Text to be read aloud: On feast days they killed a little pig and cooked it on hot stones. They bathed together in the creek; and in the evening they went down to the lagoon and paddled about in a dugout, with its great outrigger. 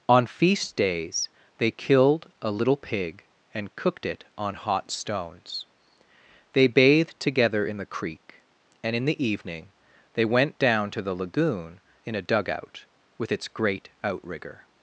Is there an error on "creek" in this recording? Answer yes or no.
no